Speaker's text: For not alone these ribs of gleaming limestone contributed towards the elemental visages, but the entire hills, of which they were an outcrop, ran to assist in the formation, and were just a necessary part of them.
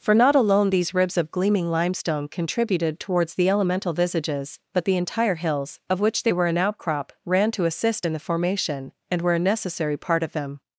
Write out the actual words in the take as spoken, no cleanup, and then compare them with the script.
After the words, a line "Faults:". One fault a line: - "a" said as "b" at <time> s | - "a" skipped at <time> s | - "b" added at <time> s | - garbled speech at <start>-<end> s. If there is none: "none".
For not alone these ribs of gleaming limestone contributed towards the elemental visages, but the entire hills, of which they were an outcrop, ran to assist in the formation, and were a necessary part of them.
Faults:
- "just" skipped at 9.3 s